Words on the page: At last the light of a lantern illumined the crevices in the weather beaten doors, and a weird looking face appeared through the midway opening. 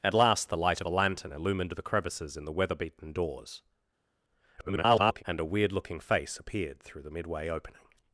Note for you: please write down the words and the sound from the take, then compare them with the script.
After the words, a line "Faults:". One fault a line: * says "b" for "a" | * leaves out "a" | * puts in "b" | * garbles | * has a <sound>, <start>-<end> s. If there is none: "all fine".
At last the light of a lantern illumined the crevices in the weather beaten doors, [garbled] and a weird looking face appeared through the midway opening.
Faults:
* garbles